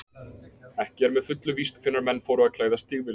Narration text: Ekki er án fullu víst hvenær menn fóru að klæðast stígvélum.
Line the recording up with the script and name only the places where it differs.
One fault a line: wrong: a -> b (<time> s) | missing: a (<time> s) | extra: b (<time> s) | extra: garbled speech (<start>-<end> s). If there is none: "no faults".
wrong: án -> með (1.2 s)